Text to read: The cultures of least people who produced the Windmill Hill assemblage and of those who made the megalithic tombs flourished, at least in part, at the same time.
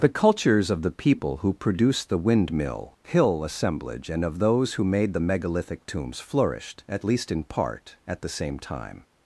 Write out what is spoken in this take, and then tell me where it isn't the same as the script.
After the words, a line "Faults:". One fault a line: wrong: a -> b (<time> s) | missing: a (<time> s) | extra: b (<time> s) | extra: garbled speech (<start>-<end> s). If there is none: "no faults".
The cultures of the people who produced the Windmill Hill assemblage and of those who made the megalithic tombs flourished, at least in part, at the same time.
Faults:
wrong: least -> the (0.8 s)